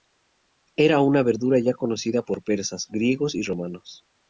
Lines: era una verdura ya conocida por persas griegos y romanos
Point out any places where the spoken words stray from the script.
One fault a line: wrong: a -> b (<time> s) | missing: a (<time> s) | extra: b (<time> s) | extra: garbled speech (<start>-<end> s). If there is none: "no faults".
no faults